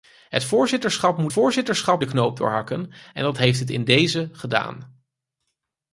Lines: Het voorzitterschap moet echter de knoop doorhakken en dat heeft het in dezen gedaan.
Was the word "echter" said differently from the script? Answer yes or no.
yes